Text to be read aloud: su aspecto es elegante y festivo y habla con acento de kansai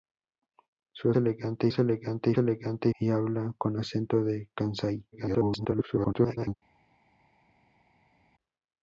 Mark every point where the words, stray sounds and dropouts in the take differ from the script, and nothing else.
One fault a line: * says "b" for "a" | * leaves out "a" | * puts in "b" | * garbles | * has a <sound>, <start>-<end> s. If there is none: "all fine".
* says "elegante" for "aspecto"
* says "elegante" for "festivo"
* garbles